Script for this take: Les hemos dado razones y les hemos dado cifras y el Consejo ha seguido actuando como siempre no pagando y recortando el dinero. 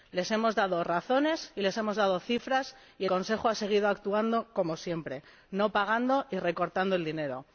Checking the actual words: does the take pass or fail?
fail